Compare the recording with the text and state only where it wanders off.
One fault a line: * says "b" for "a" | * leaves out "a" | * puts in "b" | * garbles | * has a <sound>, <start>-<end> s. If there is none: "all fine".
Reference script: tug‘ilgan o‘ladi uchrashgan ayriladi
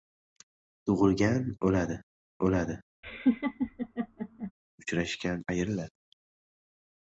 * puts in "o‘ladi"
* has a laugh, 3.0-4.5 s